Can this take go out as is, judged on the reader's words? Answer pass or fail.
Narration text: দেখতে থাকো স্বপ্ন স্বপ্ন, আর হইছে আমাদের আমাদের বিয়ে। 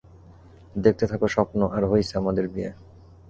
fail